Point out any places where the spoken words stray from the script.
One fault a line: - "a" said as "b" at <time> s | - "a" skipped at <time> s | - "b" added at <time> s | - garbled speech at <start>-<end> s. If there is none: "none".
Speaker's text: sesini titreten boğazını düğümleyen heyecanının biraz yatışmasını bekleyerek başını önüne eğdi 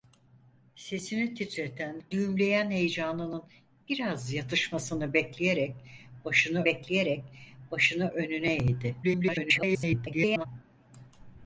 - "boğazını" skipped at 2.0 s
- "bekleyerek başını" added at 6.6 s
- garbled speech at 9.0-10.5 s